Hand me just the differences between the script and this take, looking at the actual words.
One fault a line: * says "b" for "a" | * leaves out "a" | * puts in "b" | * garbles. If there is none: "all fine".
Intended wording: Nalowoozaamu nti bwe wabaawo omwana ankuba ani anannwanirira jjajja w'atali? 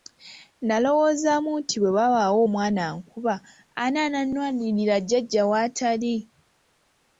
all fine